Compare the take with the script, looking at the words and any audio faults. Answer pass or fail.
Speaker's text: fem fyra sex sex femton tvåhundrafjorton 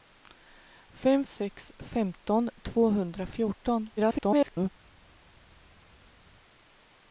fail